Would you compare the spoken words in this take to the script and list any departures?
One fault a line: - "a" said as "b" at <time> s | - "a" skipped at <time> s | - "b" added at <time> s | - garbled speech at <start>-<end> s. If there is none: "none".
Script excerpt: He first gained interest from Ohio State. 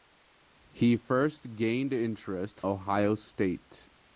- "from" skipped at 2.6 s